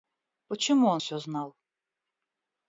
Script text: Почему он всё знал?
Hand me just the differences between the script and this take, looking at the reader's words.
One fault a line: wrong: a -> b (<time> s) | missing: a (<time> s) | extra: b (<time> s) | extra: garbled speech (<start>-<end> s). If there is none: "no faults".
no faults